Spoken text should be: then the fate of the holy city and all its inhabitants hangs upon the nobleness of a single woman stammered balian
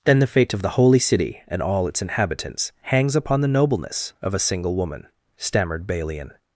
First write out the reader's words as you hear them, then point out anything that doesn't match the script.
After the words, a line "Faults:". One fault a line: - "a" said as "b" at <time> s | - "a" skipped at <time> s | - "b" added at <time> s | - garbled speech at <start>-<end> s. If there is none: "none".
then the fate of the holy city and all its inhabitants hangs upon the nobleness of a single woman stammered balian
Faults:
none